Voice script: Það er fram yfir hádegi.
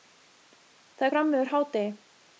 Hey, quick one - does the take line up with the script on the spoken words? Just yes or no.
yes